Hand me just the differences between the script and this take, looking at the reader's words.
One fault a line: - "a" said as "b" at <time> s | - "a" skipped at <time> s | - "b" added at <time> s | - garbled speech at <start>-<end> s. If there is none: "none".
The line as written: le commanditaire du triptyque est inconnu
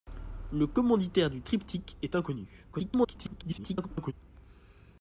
- garbled speech at 2.7-4.1 s